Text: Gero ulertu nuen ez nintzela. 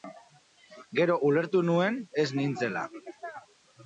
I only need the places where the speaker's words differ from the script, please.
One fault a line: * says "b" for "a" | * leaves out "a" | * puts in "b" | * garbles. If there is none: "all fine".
all fine